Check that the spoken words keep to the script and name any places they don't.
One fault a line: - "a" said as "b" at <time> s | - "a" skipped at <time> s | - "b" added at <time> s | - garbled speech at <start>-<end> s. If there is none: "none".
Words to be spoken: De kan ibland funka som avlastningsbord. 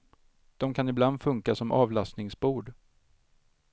none